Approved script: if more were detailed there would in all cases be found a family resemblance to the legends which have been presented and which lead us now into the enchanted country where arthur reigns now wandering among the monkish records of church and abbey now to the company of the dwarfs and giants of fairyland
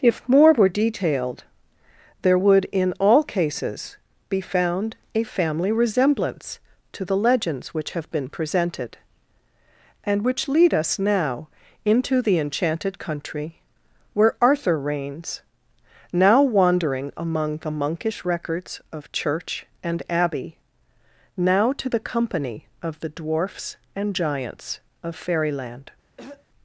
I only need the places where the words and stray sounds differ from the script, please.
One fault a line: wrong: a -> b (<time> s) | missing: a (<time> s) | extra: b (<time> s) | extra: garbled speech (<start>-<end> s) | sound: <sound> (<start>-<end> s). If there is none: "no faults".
sound: throat clearing (26.2-26.5 s)